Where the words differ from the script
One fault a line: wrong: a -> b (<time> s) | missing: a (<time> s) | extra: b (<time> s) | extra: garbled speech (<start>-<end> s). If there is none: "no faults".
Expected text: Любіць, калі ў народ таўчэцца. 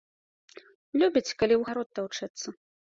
no faults